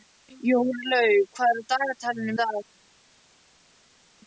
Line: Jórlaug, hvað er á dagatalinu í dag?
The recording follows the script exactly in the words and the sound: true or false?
true